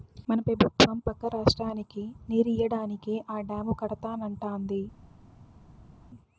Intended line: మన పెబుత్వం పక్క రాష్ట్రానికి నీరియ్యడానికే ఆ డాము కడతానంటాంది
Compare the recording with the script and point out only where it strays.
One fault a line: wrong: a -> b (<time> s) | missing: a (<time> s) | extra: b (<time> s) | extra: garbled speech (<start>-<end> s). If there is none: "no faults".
no faults